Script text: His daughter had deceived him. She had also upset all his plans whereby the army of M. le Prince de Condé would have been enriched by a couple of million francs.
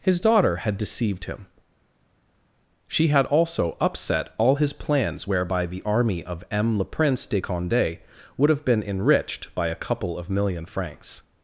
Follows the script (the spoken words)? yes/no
yes